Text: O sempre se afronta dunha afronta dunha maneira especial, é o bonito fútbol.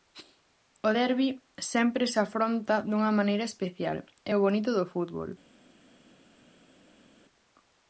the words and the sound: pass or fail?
fail